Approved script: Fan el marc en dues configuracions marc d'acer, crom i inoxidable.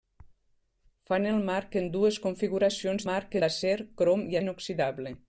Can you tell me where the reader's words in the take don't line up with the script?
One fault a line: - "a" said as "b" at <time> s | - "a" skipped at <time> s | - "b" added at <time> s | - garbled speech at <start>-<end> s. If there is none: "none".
none